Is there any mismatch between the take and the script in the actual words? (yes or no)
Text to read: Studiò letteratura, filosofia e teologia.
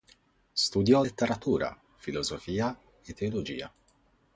no